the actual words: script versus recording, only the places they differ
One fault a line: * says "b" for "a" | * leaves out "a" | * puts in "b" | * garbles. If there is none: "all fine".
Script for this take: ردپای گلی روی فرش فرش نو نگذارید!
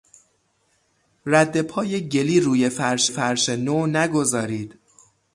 all fine